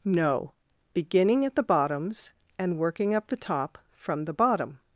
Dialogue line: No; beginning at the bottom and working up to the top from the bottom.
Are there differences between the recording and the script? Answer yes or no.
yes